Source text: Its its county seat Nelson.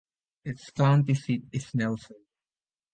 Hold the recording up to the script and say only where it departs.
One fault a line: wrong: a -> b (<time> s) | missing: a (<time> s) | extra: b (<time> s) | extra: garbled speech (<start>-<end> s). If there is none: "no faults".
missing: its (0.7 s)
extra: is (1.5 s)